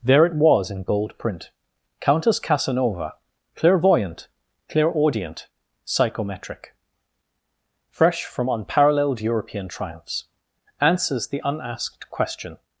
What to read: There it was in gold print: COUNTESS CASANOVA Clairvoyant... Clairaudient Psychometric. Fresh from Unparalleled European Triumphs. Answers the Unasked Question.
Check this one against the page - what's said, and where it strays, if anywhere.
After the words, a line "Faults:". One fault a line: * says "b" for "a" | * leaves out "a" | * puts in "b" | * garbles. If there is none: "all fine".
There it was in gold print: COUNTESS CASANOVA Clairvoyant... Clairaudient Psychometric. Fresh from Unparalleled European Triumphs. Answers the Unasked Question.
Faults:
all fine